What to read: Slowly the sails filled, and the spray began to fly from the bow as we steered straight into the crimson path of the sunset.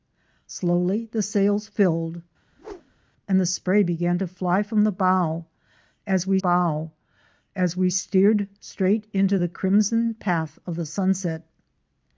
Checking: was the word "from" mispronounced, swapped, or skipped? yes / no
no